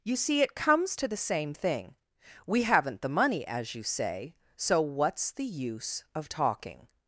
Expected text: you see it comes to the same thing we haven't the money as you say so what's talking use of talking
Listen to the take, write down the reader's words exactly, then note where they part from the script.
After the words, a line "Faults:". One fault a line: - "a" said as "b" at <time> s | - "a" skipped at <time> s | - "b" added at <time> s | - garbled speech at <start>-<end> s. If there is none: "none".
you see it comes to the same thing we haven't the money as you say so what's the use of talking
Faults:
- "talking" said as "the" at 5.3 s